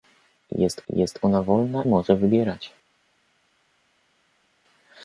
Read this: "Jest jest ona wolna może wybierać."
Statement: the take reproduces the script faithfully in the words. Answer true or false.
true